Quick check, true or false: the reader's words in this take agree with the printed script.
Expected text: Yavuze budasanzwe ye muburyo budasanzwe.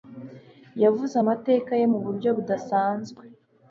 false